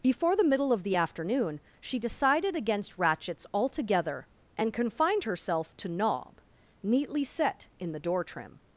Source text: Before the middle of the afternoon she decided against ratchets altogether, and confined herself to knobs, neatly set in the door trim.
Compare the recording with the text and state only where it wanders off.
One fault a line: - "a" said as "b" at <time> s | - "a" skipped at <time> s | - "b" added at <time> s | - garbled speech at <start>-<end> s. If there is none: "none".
- "knobs" said as "knob" at 5.9 s